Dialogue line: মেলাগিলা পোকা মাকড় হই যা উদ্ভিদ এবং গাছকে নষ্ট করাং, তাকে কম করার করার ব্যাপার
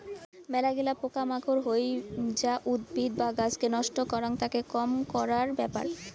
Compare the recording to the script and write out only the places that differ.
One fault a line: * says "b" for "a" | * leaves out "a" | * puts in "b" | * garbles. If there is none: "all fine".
* says "বা" for "এবং"
* leaves out "করার"